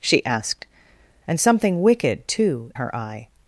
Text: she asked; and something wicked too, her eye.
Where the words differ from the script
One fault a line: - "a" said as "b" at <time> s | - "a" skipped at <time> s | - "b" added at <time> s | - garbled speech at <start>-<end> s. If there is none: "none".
none